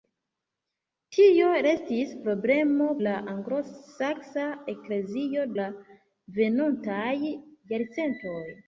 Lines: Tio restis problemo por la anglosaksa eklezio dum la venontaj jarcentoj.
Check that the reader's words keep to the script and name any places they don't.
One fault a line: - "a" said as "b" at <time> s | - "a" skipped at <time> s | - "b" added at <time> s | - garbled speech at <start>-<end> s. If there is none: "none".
- "por" skipped at 2.9 s
- "dum" skipped at 5.5 s